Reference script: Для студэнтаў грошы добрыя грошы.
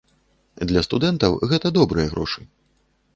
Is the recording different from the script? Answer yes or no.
yes